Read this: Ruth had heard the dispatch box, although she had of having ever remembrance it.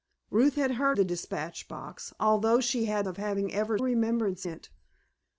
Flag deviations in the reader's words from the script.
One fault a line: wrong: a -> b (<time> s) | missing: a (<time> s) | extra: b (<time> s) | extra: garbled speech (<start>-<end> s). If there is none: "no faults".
no faults